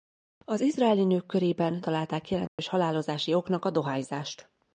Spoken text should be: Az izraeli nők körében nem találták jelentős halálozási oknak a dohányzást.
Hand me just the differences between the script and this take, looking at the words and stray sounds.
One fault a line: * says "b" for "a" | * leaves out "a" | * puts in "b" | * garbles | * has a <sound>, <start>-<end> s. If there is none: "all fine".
* leaves out "nem"
* has a dropout, 2.5-2.6 s